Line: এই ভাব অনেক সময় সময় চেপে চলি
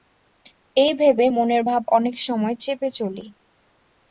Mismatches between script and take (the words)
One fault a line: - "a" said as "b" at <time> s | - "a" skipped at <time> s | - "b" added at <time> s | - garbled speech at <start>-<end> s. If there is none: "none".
- "ভেবে মনের" added at 0.9 s
- "সময়" skipped at 2.5 s